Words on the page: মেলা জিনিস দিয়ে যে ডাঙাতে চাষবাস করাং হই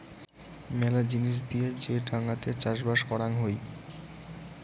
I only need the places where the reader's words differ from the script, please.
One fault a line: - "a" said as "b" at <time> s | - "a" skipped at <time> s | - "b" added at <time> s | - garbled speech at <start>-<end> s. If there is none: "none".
none